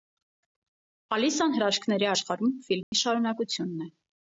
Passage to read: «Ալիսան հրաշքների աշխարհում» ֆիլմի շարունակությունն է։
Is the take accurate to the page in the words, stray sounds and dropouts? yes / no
no